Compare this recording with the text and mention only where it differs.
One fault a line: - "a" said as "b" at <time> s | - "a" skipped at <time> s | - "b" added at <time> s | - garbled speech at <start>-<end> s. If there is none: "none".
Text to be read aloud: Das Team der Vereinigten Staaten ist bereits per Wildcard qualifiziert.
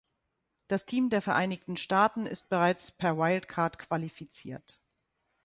none